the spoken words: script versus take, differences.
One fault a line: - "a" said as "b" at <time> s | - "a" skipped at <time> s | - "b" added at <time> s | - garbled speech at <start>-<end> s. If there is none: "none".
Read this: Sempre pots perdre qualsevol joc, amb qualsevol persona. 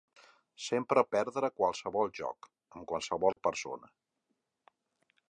- "pots" skipped at 1.0 s